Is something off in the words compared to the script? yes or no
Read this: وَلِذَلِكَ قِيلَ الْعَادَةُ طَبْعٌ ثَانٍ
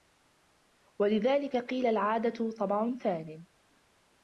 no